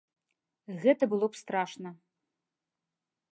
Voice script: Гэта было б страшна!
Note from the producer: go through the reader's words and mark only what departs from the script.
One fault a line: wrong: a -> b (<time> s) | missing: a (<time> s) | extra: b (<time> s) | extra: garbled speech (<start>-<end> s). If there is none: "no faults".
no faults